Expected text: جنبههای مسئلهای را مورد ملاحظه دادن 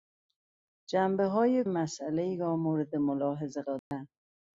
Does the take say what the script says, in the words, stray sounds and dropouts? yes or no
no